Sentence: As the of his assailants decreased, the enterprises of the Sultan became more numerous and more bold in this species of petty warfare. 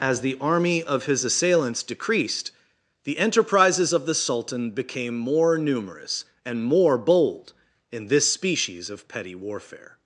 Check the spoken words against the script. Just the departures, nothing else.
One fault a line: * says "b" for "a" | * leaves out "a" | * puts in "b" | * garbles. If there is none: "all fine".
* puts in "army"